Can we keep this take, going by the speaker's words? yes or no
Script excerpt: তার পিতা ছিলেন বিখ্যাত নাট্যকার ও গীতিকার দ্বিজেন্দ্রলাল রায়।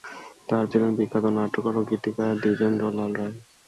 no